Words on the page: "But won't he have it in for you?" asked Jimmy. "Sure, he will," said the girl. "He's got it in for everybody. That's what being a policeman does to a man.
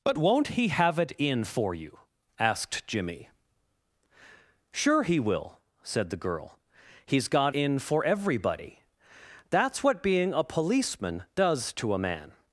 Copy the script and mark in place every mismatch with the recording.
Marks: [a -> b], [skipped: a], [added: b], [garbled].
"But won't he have it in for you?" asked Jimmy. "Sure, he will," said the girl. "He's got [skipped: it] in for everybody. That's what being a policeman does to a man.